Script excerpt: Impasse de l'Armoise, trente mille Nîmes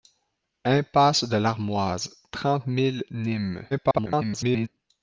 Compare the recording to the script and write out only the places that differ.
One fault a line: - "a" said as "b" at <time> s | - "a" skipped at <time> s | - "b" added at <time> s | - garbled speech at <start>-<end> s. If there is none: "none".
- garbled speech at 3.7-4.7 s